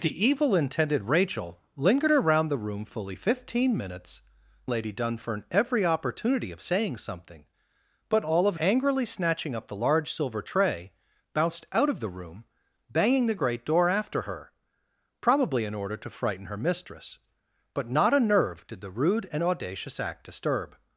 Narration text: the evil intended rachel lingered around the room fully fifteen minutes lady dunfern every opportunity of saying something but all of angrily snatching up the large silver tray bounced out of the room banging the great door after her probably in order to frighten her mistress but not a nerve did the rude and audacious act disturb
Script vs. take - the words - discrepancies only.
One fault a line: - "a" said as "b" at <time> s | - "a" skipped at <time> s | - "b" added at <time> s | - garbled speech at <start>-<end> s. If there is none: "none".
none